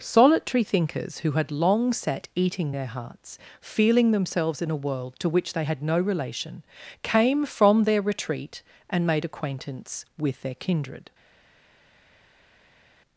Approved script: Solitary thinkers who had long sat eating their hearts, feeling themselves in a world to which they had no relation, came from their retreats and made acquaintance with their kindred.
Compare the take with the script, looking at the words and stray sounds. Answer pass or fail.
fail